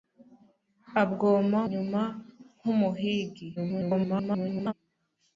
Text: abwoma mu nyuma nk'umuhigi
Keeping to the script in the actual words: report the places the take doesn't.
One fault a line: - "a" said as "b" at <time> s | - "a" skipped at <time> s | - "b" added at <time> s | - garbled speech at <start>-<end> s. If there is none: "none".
- "mu" skipped at 1.6 s
- garbled speech at 3.6-4.7 s